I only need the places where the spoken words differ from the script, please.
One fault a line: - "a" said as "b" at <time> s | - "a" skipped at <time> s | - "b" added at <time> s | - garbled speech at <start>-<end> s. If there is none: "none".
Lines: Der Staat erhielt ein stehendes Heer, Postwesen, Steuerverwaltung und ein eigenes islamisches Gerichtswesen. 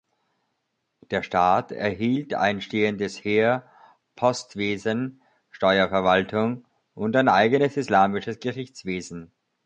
none